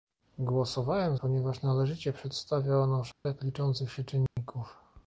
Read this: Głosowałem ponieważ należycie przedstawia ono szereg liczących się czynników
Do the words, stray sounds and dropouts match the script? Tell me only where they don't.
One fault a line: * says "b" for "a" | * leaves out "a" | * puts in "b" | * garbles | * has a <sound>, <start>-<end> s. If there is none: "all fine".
* has a dropout, 3.1-3.3 s
* has a dropout, 4.3-4.4 s